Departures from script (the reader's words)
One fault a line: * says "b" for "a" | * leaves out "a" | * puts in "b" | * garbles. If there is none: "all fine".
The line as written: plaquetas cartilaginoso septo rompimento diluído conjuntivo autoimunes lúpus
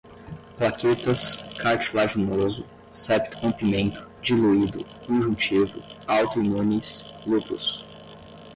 all fine